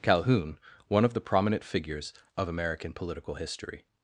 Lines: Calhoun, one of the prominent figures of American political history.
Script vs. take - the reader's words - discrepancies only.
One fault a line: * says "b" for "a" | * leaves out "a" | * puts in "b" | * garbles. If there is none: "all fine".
all fine